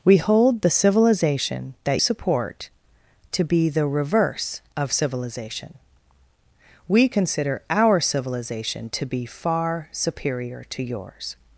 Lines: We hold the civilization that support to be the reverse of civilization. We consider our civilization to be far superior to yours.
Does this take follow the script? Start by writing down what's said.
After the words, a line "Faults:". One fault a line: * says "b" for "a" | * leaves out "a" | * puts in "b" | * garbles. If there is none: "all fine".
We hold the civilization that support to be the reverse of civilization. We consider our civilization to be far superior to yours.
Faults:
all fine